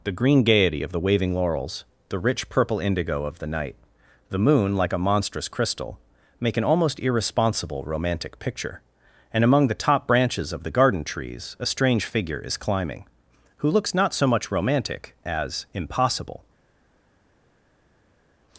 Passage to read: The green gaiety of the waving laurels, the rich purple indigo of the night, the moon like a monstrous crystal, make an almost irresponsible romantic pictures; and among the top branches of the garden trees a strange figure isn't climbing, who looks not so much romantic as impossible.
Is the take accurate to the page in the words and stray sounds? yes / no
no